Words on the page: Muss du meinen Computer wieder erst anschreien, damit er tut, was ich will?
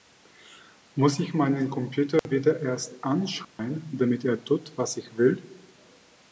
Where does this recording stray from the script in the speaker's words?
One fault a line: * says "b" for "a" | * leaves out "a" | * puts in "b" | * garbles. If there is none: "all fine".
* says "ich" for "du"